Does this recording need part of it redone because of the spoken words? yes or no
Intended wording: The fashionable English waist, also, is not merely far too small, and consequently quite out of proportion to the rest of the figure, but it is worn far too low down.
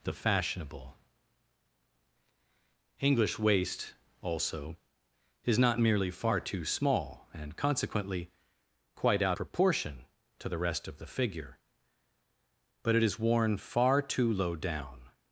yes